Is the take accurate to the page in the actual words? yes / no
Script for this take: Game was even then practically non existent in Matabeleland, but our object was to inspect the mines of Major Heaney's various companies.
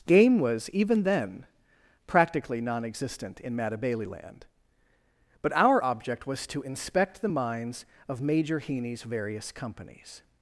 yes